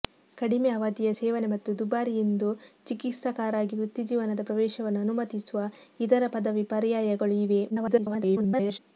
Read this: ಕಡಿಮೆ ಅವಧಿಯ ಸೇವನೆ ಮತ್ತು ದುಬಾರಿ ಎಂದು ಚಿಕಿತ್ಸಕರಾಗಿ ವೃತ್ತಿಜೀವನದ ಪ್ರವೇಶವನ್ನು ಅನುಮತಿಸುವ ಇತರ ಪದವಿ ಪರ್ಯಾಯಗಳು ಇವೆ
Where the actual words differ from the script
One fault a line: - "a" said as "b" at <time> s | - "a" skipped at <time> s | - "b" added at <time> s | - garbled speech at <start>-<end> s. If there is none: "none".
- garbled speech at 7.7-8.8 s